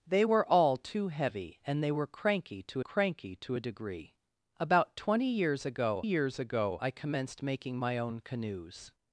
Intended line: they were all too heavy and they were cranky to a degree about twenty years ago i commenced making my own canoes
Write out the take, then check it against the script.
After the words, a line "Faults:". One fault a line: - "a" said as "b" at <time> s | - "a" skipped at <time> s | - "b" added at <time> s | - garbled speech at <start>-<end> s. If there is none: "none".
they were all too heavy and they were cranky to cranky to a degree about twenty years ago years ago i commenced making my own canoes
Faults:
- "cranky to" added at 2.8 s
- "years ago" added at 6.0 s